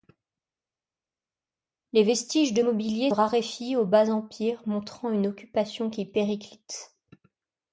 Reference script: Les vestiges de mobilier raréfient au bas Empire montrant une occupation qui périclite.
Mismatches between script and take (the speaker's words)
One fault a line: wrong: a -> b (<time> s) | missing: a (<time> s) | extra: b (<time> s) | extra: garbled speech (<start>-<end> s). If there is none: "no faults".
no faults